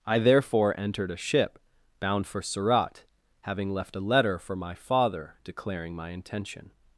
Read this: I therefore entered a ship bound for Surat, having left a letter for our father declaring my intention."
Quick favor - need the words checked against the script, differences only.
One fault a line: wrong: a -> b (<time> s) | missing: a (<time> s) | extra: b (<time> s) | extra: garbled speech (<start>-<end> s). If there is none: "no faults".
wrong: our -> my (4.5 s)